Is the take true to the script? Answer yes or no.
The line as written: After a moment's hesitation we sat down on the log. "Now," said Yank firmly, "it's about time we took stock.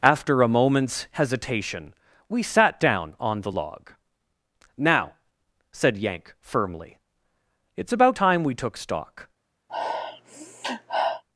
yes